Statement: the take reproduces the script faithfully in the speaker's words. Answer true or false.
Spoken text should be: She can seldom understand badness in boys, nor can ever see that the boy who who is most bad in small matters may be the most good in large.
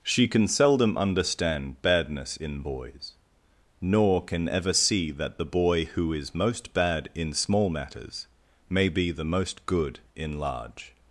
false